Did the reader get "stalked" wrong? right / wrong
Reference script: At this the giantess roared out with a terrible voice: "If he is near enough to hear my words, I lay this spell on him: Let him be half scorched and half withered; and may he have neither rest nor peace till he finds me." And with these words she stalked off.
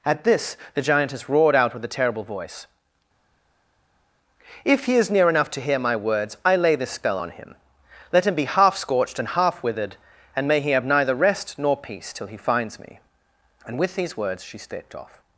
wrong